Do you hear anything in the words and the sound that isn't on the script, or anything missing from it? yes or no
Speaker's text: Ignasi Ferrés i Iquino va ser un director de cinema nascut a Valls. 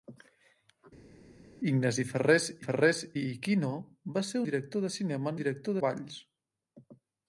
yes